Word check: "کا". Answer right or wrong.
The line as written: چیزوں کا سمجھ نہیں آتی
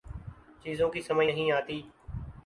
wrong